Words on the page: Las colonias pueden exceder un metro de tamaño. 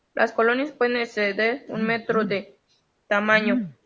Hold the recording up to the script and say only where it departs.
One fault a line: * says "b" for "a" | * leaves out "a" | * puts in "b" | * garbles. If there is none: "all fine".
all fine